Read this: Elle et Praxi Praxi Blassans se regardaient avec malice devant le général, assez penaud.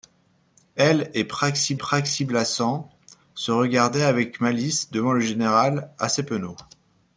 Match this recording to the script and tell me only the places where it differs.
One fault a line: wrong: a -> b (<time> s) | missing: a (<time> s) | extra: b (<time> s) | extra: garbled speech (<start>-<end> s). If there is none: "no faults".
no faults